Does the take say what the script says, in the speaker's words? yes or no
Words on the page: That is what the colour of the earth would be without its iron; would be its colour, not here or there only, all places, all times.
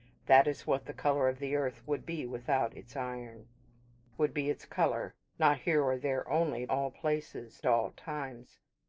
yes